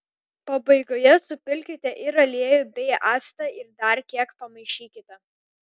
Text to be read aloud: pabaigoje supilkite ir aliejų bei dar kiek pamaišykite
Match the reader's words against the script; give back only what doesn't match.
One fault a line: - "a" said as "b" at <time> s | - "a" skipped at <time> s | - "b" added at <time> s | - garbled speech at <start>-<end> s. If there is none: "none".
- "actą ir" added at 3.1 s